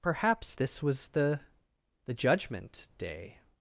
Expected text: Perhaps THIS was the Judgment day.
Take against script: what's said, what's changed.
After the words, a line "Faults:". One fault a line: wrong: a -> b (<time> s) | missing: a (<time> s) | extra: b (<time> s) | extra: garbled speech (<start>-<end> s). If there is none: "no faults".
Perhaps THIS was the the Judgment day.
Faults:
extra: the (2.0 s)